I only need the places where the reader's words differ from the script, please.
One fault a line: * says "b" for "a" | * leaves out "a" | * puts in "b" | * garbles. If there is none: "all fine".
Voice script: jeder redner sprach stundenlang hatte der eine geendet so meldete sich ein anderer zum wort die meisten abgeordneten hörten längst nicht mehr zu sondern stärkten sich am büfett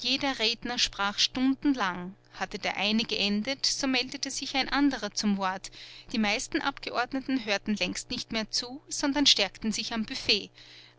all fine